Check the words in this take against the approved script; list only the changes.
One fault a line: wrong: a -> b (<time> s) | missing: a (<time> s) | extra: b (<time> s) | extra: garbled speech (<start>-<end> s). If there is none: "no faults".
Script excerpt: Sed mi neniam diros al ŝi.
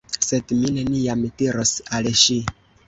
no faults